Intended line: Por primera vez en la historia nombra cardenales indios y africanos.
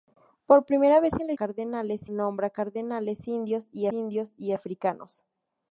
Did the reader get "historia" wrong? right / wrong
wrong